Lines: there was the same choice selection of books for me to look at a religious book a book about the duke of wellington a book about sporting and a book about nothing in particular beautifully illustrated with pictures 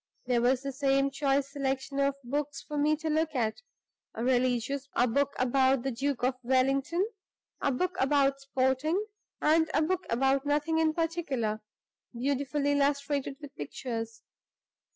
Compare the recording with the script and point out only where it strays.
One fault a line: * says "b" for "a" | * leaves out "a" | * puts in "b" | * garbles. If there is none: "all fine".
* leaves out "book"